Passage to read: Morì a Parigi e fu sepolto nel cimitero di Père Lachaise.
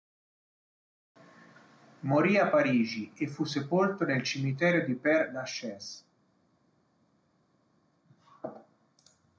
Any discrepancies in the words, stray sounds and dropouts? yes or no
no